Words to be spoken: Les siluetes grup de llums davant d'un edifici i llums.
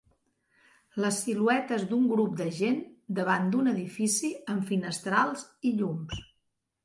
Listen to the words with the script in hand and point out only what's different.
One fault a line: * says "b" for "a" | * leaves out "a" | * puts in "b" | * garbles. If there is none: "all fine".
* puts in "d'un"
* says "gent" for "llums"
* puts in "amb finestrals"